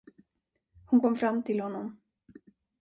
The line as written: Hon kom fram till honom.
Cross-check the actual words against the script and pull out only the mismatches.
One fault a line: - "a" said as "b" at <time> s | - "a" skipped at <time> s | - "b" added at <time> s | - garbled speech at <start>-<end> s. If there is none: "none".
none